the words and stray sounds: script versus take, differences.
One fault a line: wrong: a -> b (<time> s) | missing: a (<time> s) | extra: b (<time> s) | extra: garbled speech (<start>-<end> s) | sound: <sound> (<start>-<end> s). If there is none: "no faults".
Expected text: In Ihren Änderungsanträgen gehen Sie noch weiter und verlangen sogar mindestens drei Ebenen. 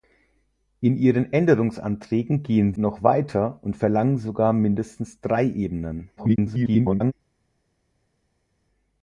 missing: Sie (2.7 s)
extra: garbled speech (6.2-7.1 s)